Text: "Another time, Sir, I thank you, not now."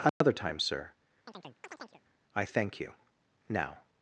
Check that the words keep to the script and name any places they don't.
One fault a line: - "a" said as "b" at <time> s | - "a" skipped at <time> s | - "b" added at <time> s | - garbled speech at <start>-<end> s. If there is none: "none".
- "not" skipped at 2.9 s